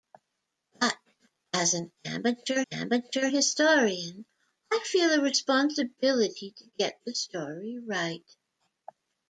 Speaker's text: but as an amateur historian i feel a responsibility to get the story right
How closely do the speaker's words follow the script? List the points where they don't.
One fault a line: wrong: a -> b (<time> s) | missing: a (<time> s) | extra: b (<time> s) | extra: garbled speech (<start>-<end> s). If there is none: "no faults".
extra: amateur (2.7 s)